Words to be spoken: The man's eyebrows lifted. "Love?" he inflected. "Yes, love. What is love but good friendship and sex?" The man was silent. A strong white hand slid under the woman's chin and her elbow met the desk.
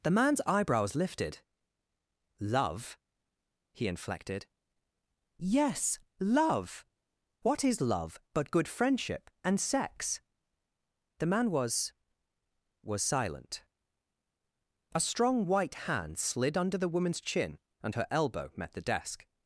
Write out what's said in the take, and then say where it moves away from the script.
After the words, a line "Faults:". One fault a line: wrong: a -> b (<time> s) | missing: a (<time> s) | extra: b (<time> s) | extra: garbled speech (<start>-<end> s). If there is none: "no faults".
The man's eyebrows lifted. "Love?" he inflected. "Yes, love. What is love but good friendship and sex?" The man was was silent. A strong white hand slid under the woman's chin and her elbow met the desk.
Faults:
extra: was (12.8 s)